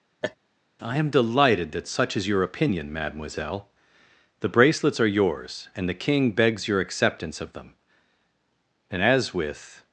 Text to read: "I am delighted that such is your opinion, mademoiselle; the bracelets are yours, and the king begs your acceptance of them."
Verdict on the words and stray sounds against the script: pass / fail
fail